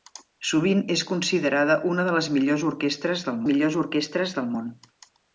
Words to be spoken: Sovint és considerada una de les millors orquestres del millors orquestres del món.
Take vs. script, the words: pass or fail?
pass